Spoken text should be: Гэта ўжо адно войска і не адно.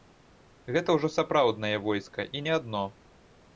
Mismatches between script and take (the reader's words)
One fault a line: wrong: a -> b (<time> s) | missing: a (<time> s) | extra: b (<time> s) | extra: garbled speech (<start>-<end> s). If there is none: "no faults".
wrong: адно -> сапраўднае (1.2 s)